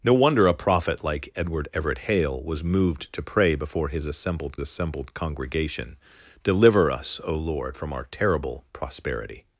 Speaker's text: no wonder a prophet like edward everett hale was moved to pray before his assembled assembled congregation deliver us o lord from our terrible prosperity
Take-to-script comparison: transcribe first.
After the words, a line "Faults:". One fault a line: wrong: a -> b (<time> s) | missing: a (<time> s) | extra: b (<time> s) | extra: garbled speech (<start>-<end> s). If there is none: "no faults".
no wonder a prophet like edward everett hale was moved to pray before his assembled assembled congregation deliver us o lord from our terrible prosperity
Faults:
no faults